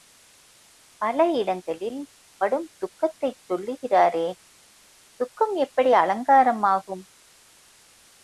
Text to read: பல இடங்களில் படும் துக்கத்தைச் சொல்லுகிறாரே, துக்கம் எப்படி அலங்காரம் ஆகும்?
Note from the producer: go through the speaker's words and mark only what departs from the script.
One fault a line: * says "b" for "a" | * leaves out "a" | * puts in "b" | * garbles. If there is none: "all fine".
all fine